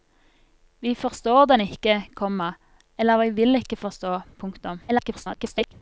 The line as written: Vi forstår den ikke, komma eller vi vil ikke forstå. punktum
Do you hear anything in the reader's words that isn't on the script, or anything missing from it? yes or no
yes